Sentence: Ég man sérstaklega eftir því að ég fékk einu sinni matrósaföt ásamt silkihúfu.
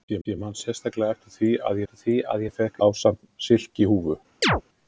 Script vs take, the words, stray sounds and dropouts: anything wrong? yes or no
yes